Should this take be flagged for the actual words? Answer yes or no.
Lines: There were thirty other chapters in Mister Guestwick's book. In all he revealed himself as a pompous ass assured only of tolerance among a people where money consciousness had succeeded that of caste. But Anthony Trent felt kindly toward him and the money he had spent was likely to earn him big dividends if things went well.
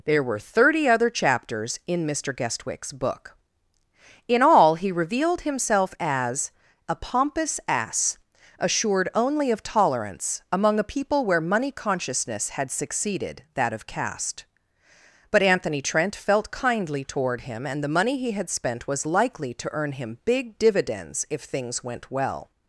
no